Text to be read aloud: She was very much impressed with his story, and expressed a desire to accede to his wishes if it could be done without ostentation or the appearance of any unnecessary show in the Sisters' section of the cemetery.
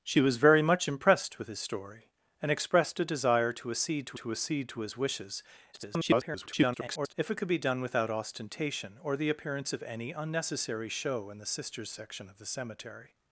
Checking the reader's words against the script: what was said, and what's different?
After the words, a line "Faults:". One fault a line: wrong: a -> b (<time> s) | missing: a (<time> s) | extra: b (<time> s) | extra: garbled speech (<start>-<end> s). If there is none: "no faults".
She was very much impressed with his story, and expressed a desire to accede to to accede to his wishes [garbled] if it could be done without ostentation or the appearance of any unnecessary show in the Sisters' section of the cemetery.
Faults:
extra: to accede to (4.1 s)
extra: garbled speech (5.7-7.1 s)